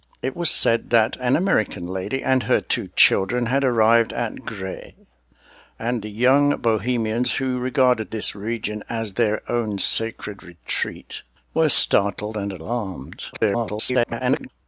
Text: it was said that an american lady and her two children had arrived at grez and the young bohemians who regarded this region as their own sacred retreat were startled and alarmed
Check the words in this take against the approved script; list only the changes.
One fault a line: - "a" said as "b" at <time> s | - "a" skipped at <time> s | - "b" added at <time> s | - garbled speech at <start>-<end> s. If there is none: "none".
- garbled speech at 13.3-14.5 s